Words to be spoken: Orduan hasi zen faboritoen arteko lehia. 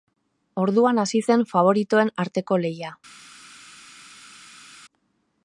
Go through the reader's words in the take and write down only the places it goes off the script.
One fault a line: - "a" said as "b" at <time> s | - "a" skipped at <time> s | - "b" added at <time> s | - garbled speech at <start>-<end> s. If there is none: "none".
none